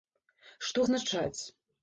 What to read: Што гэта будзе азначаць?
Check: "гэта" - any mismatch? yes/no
yes